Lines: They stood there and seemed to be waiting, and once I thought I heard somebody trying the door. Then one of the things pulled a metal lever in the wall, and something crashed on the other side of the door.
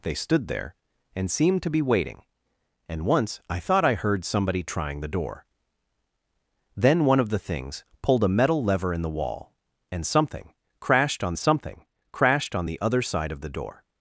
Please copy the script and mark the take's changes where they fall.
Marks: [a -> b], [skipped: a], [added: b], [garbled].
They stood there and seemed to be waiting, and once I thought I heard somebody trying the door. Then one of the things pulled a metal lever in the wall, and something crashed on [added: something crashed on] the other side of the door.